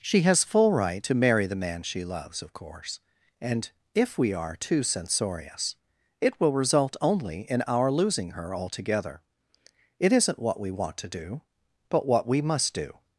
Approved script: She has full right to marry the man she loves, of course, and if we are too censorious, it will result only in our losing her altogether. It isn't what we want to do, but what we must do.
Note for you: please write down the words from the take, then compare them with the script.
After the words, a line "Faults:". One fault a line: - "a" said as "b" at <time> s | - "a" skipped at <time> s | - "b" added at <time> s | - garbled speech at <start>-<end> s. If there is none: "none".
She has full right to marry the man she loves, of course, and if we are too censorious, it will result only in our losing her altogether. It isn't what we want to do, but what we must do.
Faults:
none